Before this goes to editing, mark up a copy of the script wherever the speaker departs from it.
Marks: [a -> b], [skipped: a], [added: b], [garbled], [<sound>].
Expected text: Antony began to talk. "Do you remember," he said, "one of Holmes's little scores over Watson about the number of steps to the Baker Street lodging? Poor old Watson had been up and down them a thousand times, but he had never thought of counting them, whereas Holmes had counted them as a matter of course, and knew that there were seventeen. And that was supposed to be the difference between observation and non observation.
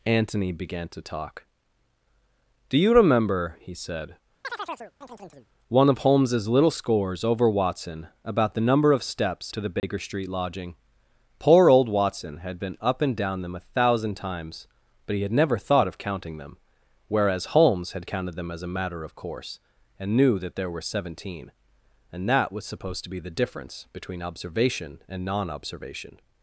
Antony began to talk. "Do you remember," he said, [chirp] "one of Holmes's little scores over Watson about the number of steps to the Baker [dropout] Street lodging? Poor old Watson had been up and down them a thousand times, but he had never thought of counting them, whereas Holmes had counted them as a matter of course, and knew that there were seventeen. And that was supposed to be the difference between observation and non observation.